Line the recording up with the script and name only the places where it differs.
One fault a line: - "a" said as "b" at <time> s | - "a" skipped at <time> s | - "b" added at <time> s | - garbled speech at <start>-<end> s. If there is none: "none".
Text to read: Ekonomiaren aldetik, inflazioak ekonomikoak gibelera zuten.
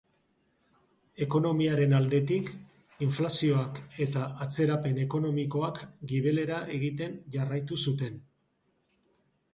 - "eta atzerapen" added at 4.1 s
- "egiten jarraitu" added at 6.8 s